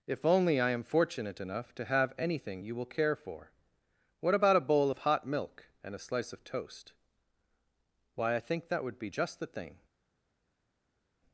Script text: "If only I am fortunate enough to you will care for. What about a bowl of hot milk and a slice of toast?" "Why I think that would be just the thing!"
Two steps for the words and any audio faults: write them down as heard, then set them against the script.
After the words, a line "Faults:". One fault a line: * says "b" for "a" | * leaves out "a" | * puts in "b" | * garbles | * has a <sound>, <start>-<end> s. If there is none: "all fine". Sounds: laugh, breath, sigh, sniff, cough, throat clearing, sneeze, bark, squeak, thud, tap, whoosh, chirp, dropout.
"If only I am fortunate enough to have anything you will care for. What about a bowl of hot milk and a slice of toast?" "Why I think that would be just the thing!"
Faults:
* puts in "have anything"